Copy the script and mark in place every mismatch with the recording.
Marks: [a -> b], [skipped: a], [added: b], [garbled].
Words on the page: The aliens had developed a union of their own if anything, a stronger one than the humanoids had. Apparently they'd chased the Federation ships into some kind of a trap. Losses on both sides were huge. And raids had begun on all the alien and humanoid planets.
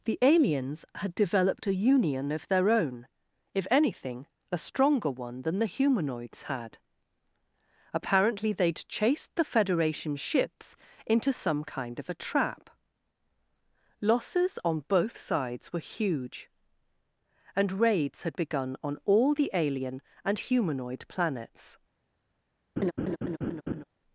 The aliens had developed a union of their own if anything, a stronger one than the humanoids had. Apparently they'd chased the Federation ships into some kind of a trap. Losses on both sides were huge. And raids had begun on all the alien and humanoid planets.